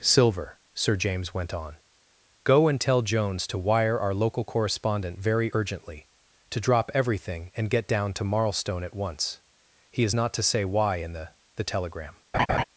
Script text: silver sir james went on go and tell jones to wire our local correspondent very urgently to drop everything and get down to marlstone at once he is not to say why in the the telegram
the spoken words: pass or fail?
pass